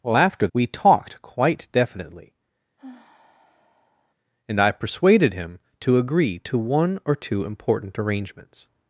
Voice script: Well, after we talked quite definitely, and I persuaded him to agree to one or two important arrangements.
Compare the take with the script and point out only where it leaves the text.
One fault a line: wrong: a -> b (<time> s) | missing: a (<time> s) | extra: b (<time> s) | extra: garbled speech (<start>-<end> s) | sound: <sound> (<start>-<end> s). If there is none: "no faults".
sound: sigh (2.8-4.1 s)